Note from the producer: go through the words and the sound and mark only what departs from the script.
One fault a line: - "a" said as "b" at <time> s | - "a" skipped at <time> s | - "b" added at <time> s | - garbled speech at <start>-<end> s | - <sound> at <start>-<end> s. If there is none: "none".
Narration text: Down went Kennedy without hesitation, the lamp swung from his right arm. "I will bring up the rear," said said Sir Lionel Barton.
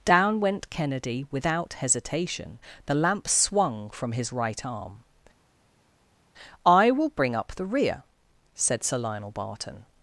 - "said" skipped at 8.8 s